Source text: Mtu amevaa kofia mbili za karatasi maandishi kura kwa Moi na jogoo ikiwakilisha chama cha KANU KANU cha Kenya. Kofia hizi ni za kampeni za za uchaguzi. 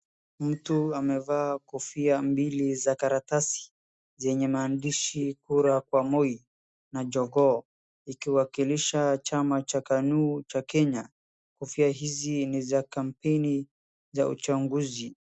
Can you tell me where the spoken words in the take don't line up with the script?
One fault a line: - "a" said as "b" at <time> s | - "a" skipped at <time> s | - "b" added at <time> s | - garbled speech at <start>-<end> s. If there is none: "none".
- "zenye" added at 4.2 s
- "KANU" skipped at 10.4 s
- "za" skipped at 14.3 s